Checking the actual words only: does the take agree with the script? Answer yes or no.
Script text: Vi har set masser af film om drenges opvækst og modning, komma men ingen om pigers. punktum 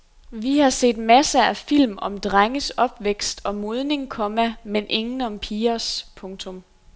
yes